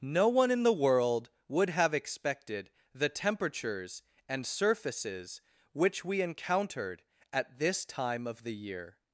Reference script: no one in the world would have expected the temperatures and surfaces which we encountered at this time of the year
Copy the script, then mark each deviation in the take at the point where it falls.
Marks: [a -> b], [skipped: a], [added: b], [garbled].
no one in the world would have expected the temperatures and surfaces which we encountered at this time of the year